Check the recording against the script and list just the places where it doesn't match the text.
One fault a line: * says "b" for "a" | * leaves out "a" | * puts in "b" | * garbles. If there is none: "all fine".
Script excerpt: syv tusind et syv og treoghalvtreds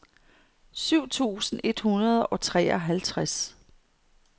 * says "hundrede" for "syv"